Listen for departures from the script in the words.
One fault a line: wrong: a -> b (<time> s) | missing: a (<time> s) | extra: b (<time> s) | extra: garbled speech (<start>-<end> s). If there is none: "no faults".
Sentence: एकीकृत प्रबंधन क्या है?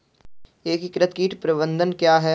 extra: कीट (1.1 s)